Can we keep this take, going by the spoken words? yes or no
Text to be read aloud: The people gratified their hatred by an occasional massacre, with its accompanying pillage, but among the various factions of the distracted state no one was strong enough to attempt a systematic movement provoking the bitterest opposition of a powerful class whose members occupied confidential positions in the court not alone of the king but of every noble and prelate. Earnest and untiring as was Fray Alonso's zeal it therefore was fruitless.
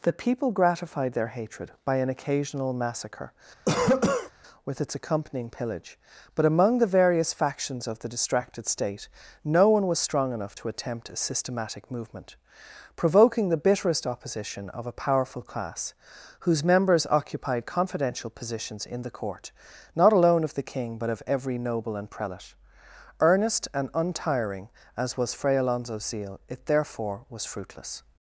yes